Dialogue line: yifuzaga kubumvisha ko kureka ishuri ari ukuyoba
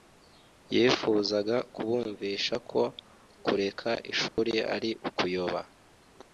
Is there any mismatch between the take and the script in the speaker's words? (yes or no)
no